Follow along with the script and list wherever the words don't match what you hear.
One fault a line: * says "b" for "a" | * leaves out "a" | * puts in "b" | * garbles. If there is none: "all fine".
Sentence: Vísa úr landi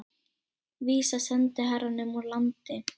* puts in "sendiherranum"